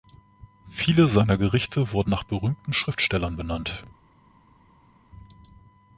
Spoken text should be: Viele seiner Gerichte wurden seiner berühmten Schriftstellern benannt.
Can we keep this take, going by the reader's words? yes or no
no